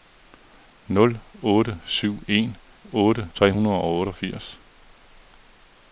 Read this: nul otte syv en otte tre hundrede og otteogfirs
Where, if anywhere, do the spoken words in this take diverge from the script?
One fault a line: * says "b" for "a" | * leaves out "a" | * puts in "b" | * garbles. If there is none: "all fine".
all fine